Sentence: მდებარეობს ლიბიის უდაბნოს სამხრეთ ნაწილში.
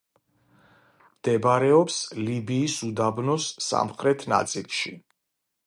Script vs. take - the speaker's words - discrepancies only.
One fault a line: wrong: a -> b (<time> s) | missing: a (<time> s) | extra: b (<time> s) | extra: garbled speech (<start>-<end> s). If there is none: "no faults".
no faults